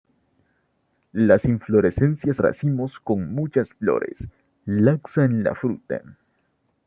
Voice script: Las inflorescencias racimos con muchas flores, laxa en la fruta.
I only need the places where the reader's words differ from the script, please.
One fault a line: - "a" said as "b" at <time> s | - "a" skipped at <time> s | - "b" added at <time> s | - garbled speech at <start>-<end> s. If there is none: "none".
none